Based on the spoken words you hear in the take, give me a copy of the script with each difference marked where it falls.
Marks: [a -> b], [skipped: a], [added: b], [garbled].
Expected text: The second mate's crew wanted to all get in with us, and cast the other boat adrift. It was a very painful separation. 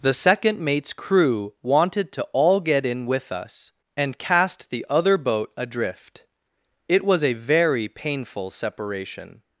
The second mate's crew wanted to all get in with us, and cast the other boat adrift. It was a very painful separation.